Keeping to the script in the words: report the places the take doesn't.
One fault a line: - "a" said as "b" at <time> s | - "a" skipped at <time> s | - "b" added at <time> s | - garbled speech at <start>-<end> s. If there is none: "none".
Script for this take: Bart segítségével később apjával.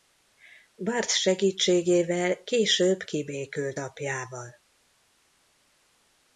- "kibékült" added at 3.0 s